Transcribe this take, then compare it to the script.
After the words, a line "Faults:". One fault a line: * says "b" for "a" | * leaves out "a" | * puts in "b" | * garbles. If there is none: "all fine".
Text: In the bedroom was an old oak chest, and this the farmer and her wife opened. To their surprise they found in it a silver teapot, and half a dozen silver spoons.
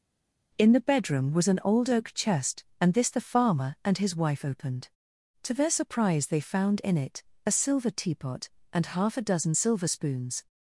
In the bedroom was an old oak chest, and this the farmer and his wife opened. To their surprise they found in it a silver teapot, and half a dozen silver spoons.
Faults:
* says "his" for "her"